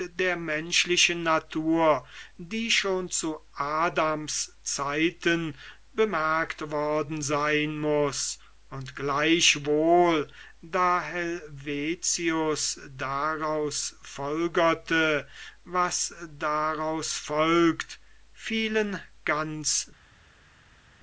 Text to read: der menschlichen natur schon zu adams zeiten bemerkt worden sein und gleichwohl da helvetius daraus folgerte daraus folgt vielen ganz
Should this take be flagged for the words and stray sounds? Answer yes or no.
yes